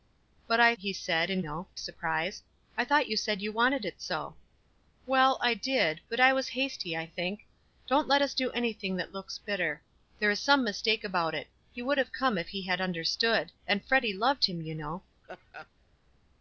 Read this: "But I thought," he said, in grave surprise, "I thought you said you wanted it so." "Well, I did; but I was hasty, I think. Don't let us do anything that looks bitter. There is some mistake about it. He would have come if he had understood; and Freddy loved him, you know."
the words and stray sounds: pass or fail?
fail